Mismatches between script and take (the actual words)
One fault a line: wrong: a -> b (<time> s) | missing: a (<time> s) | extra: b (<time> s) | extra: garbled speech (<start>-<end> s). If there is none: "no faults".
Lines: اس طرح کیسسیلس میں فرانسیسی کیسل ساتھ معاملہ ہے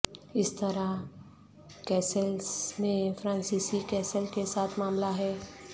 extra: کے (4.3 s)